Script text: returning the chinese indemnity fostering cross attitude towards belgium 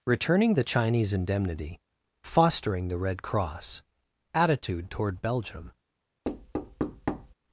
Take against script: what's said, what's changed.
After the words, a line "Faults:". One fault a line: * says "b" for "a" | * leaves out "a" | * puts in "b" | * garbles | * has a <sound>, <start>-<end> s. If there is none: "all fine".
returning the chinese indemnity fostering the red cross attitude toward belgium
Faults:
* puts in "the red"
* says "toward" for "towards"
* has a thud, 6.2-7.3 s